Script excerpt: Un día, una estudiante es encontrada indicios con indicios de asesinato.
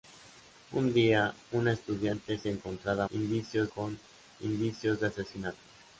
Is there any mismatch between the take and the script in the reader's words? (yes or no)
no